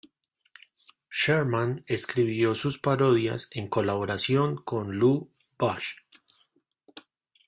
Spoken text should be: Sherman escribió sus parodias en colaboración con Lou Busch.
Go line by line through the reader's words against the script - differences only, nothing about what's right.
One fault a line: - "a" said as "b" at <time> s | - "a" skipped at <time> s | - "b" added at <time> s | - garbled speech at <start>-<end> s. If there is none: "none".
none